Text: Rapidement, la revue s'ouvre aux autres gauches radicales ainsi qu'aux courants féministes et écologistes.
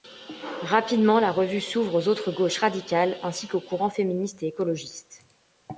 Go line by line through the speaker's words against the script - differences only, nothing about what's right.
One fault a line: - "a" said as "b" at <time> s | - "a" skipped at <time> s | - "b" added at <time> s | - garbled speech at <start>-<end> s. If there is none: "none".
none